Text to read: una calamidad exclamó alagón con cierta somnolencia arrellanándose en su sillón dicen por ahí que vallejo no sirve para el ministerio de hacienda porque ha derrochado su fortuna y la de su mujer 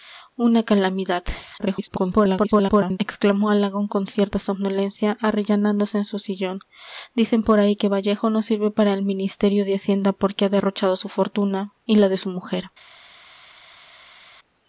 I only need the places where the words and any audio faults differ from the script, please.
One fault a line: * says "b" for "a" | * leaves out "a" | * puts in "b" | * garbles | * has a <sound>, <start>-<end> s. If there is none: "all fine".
* garbles